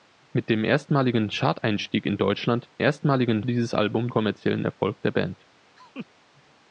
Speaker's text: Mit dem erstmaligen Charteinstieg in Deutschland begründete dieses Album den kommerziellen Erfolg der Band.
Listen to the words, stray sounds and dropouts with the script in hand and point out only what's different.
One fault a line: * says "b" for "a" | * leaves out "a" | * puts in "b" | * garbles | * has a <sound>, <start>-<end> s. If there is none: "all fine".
* says "erstmaligen" for "begründete"
* leaves out "den"
* has a laugh, 5.8-6.1 s